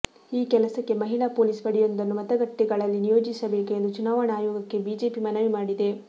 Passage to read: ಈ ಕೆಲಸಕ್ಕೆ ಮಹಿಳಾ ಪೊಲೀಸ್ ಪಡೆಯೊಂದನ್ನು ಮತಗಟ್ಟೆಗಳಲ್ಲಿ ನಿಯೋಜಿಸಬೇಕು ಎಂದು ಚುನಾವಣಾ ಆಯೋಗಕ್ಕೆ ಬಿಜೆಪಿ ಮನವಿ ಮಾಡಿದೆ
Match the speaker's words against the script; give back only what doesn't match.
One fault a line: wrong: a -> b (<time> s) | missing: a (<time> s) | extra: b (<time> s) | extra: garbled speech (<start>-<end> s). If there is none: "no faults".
no faults